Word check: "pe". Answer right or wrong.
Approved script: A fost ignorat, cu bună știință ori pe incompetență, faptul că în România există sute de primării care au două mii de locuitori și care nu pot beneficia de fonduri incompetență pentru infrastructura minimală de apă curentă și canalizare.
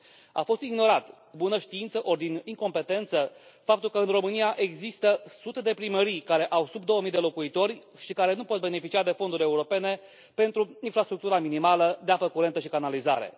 wrong